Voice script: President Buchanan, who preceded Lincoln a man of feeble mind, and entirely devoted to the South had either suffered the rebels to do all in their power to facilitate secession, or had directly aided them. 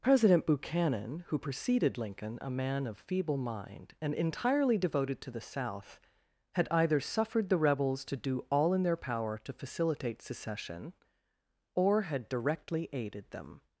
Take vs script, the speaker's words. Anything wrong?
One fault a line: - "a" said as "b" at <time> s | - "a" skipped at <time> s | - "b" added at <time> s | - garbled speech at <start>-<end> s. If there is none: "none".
none